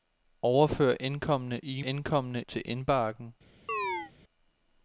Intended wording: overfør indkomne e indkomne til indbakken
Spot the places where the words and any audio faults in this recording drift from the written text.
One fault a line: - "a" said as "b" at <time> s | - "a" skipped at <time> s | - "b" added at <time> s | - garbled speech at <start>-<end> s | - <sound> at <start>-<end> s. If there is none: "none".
- chirp at 3.7-4.1 s